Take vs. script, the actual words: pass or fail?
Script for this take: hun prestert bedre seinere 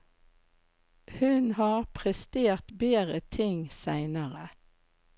fail